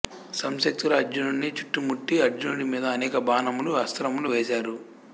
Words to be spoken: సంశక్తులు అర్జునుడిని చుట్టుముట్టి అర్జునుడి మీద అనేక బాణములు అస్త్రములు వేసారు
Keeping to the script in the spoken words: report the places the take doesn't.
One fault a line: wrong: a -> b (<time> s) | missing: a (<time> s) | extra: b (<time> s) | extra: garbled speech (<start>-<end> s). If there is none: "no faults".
no faults